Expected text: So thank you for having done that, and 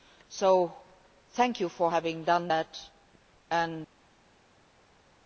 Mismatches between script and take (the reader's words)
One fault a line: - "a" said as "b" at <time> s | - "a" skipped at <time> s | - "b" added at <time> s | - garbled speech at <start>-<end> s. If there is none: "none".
none